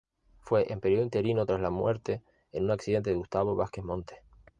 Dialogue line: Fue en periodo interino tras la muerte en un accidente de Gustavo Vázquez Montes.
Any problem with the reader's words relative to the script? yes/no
no